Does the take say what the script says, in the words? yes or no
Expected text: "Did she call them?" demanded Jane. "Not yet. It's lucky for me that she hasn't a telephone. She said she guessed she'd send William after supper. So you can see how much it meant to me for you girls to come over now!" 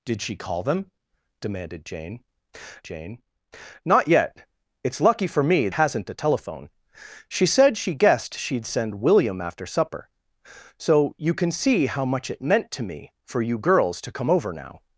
no